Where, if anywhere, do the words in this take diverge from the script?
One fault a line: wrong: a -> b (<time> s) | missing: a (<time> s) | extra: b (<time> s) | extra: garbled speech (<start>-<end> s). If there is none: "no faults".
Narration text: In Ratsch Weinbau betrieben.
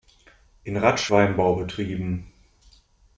no faults